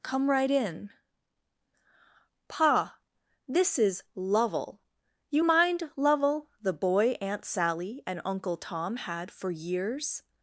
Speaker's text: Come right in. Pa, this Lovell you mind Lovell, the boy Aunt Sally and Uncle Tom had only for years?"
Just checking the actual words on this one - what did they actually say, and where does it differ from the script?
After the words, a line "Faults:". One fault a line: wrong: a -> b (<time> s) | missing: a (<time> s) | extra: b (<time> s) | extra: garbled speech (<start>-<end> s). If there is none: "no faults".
Come right in. Pa, this is Lovell you mind Lovell, the boy Aunt Sally and Uncle Tom had for years?"
Faults:
extra: is (3.8 s)
missing: only (9.3 s)